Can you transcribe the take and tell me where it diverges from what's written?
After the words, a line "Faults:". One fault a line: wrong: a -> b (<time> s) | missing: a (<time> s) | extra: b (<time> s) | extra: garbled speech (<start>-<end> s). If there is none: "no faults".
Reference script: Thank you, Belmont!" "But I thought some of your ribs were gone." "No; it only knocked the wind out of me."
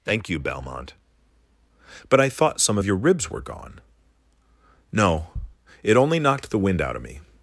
Thank you, Belmont!" "But I thought some of your ribs were gone." "No; it only knocked the wind out of me."
Faults:
no faults